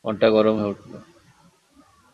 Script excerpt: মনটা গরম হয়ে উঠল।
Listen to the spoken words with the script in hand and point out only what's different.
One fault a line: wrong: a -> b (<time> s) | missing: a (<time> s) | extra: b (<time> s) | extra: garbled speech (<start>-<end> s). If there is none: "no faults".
no faults